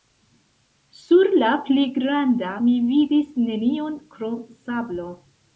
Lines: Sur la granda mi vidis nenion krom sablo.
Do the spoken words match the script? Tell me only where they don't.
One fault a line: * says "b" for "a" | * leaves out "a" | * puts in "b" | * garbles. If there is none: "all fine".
* puts in "pli"